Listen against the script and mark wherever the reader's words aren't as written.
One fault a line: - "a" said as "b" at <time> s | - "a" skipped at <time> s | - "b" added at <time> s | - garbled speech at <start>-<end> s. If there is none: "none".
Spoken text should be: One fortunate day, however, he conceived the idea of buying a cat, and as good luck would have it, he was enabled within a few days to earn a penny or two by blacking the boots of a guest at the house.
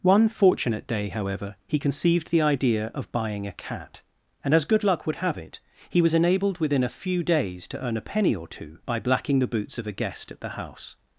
none